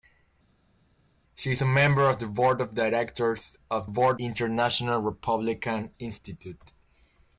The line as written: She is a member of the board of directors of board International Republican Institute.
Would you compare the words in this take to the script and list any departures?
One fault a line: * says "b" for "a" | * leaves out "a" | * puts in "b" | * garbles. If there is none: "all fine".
all fine